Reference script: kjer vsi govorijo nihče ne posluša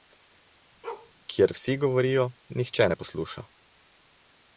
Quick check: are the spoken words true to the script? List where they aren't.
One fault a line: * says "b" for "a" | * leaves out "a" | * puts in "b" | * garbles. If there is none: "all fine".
all fine